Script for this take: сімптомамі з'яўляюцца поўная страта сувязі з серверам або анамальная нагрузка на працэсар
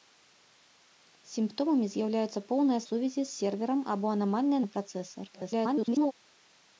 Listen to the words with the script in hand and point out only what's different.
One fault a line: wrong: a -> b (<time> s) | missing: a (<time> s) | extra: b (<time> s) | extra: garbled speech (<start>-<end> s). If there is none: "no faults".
missing: страта (2.8 s)
missing: нагрузка (4.6 s)
extra: garbled speech (5.3-6.1 s)